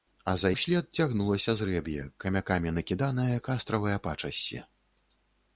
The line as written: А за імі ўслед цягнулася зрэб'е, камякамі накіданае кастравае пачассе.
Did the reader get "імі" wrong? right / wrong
wrong